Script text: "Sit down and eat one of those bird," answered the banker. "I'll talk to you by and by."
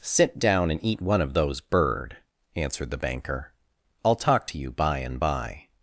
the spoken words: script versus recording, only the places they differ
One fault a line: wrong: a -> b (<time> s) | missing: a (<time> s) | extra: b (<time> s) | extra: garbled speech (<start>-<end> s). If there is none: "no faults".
no faults